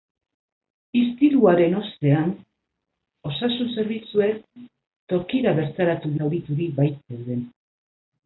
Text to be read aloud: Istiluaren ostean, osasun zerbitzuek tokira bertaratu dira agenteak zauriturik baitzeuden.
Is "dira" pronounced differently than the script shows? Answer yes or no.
yes